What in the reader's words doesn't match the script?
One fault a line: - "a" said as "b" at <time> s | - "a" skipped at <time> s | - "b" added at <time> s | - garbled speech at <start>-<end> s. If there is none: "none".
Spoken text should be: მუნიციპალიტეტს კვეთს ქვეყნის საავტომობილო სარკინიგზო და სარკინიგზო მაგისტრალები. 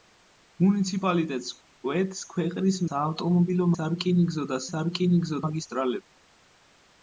none